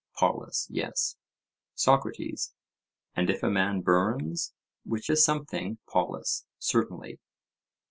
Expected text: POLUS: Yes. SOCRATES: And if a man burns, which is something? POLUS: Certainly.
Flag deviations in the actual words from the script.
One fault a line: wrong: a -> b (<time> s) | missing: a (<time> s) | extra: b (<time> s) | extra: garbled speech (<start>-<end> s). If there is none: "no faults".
no faults